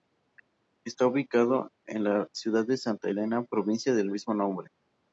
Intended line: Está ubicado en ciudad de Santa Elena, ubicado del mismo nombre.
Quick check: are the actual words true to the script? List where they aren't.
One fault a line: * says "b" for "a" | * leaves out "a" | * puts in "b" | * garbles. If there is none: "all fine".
* puts in "la"
* says "provincia" for "ubicado"